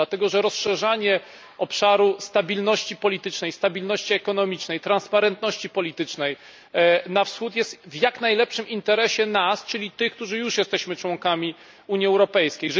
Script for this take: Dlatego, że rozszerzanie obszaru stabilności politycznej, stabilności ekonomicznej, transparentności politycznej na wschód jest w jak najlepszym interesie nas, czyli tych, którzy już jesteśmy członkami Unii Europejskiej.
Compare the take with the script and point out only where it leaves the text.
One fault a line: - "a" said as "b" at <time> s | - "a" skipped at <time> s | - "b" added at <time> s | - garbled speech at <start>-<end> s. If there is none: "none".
none